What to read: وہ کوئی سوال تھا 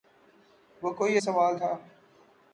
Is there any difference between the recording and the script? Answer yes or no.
no